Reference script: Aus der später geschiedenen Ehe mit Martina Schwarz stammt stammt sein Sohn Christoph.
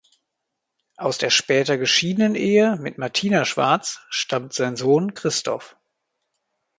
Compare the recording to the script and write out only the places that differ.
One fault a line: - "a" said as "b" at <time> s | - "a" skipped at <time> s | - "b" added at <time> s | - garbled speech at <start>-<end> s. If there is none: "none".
- "stammt" skipped at 4.5 s